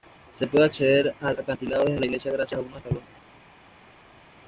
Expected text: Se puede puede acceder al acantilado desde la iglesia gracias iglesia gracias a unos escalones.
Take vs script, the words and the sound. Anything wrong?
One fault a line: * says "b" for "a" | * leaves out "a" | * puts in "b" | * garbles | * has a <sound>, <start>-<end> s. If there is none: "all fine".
* leaves out "puede"
* leaves out "iglesia gracias"